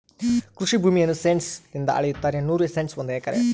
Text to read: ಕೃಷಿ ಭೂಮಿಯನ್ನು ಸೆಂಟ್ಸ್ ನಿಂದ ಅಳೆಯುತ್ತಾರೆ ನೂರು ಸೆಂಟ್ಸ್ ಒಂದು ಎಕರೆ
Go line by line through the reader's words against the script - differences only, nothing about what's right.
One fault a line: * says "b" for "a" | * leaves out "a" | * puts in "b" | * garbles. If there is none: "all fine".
all fine